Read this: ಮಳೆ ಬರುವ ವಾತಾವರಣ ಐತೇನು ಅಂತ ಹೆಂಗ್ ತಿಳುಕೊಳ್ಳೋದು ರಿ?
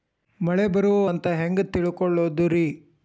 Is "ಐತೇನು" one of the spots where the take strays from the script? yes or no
yes